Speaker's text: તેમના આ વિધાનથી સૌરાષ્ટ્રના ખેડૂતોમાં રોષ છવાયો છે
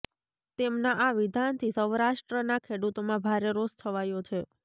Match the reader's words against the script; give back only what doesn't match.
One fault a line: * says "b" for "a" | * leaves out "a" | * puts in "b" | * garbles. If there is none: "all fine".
* puts in "ભારે"